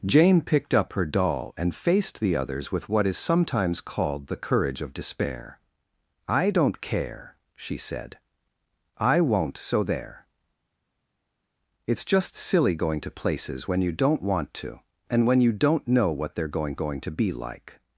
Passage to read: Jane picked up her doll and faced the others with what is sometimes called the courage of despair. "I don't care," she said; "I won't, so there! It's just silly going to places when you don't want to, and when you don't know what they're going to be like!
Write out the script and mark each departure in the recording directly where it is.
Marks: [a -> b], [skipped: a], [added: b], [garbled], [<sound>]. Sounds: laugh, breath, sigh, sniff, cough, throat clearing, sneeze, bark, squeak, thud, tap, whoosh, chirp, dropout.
Jane picked up her doll and faced the others with what is sometimes called the courage of despair. "I don't care," she said; "I won't, so there! It's just silly going to places when you don't want to, and when you don't know what they're going [added: going] to be like!